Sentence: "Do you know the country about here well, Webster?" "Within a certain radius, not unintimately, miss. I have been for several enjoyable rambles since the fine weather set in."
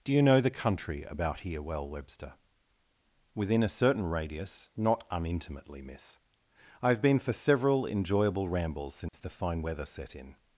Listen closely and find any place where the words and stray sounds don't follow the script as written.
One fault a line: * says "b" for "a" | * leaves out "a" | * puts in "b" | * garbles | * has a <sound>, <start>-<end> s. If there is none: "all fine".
* has a dropout, 9.1-9.1 s